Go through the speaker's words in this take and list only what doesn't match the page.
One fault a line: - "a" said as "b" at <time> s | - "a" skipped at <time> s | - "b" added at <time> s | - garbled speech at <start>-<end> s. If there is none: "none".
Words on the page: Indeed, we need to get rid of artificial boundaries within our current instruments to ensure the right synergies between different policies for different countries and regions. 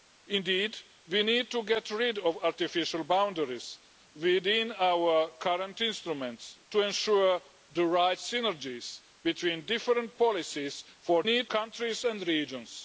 - "different" said as "need" at 11.2 s